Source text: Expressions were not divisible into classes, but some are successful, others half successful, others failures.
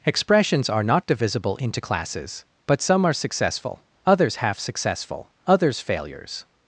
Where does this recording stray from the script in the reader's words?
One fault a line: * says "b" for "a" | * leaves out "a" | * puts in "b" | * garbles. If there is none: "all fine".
* says "are" for "were"